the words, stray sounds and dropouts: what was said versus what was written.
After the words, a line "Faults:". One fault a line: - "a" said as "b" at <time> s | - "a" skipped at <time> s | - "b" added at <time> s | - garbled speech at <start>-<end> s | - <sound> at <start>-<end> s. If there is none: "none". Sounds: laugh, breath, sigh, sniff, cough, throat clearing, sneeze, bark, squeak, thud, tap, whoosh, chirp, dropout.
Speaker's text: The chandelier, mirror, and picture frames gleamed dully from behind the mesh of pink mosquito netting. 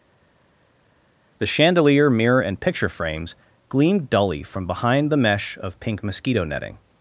The chandelier, mirror, and picture frames gleamed dully from behind the mesh of pink mosquito netting.
Faults:
none